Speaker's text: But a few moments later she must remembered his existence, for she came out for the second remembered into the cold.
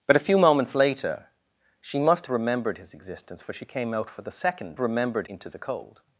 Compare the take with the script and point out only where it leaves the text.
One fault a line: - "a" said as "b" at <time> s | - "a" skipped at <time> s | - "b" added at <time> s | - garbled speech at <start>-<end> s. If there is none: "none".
none